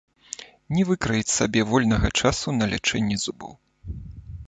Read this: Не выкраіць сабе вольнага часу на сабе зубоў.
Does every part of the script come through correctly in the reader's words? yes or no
no